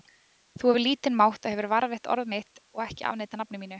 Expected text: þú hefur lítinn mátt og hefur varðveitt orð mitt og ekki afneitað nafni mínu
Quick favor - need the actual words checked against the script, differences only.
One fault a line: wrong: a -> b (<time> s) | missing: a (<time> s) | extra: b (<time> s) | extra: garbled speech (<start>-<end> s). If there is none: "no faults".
no faults